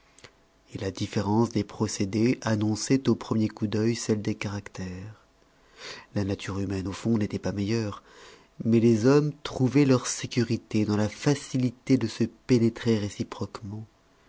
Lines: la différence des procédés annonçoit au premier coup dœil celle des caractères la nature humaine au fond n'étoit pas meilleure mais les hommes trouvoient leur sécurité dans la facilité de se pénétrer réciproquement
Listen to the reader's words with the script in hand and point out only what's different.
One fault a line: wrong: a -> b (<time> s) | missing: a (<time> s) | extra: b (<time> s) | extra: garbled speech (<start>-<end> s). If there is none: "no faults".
no faults